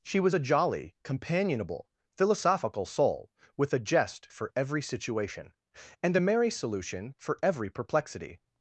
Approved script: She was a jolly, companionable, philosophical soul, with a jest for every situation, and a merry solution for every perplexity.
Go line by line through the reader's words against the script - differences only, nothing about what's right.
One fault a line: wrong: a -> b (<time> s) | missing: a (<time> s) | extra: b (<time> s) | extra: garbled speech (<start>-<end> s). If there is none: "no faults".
no faults